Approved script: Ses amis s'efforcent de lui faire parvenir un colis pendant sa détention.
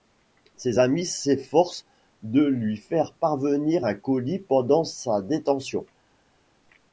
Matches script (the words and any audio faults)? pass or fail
pass